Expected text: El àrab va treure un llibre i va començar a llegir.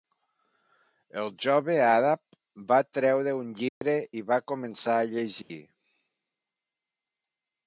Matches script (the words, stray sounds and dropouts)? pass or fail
fail